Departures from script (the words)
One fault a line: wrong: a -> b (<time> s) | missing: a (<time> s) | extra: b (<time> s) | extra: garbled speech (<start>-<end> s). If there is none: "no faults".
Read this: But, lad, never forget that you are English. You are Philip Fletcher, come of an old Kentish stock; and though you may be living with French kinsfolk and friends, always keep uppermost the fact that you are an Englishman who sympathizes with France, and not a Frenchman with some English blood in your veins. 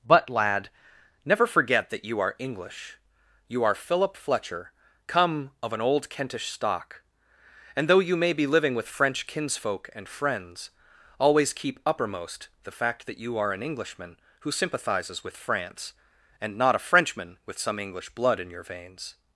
no faults